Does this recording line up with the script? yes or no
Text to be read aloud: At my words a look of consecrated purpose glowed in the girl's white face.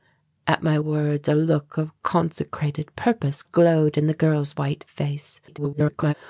no